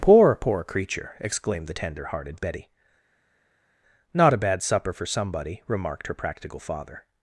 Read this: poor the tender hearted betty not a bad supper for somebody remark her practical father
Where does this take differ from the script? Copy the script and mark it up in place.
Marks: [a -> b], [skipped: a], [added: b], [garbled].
poor [added: poor creature exclaimed] the tender hearted betty not a bad supper for somebody [remark -> remarked] her practical father